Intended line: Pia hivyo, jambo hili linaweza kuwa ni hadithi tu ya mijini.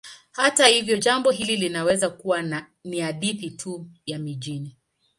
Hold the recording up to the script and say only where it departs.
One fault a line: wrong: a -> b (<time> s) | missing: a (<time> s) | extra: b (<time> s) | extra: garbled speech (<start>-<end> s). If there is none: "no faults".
wrong: Pia -> Hata (0.3 s)